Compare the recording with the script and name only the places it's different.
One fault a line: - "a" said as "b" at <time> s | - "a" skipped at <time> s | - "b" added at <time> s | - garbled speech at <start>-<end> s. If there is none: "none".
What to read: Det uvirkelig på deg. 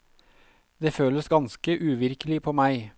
- "føles ganske" added at 0.9 s
- "deg" said as "meg" at 2.6 s